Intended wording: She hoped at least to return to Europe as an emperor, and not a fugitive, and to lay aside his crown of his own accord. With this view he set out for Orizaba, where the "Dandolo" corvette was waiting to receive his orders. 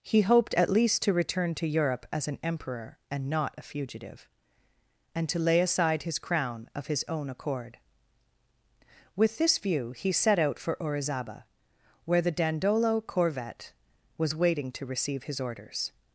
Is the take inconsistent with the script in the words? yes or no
yes